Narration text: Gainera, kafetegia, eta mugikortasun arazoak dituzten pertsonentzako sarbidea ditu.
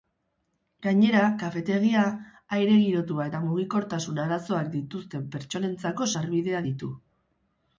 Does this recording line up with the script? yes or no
no